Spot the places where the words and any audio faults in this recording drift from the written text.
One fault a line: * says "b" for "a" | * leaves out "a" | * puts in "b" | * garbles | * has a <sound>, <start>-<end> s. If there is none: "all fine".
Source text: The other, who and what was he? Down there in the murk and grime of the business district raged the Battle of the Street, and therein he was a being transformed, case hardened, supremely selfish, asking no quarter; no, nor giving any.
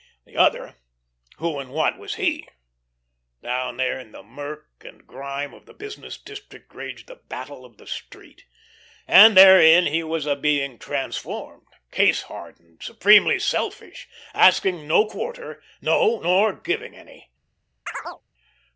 * has a chirp, 17.9-18.2 s